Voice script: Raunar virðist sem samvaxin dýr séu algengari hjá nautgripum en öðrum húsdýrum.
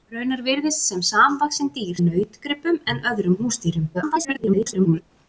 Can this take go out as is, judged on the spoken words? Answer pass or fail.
fail